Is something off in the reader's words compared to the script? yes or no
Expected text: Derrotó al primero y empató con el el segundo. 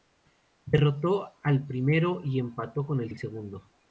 no